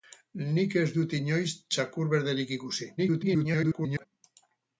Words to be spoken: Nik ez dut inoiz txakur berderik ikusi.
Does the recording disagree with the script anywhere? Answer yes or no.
yes